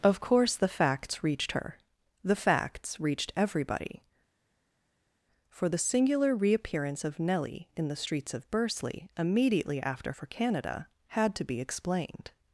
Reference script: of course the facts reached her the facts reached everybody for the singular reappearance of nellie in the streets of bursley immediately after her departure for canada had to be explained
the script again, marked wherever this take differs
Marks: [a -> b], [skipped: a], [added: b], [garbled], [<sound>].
of course the facts reached her the facts reached everybody for the singular reappearance of nellie in the streets of bursley immediately after [skipped: her departure] for canada had to be explained